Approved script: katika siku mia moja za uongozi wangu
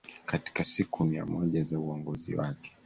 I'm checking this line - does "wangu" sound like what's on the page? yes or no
no